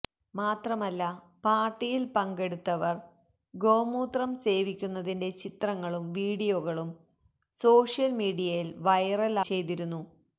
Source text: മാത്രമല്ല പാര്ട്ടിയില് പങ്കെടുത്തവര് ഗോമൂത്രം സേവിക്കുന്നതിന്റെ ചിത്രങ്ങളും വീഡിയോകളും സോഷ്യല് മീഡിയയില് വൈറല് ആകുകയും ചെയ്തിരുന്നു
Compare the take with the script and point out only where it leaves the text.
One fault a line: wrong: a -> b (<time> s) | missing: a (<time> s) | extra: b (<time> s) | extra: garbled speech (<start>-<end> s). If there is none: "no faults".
missing: ആകുകയും (9.4 s)